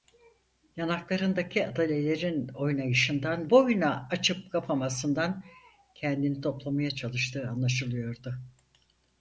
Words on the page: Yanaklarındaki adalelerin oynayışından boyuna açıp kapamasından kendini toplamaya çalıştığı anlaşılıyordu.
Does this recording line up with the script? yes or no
yes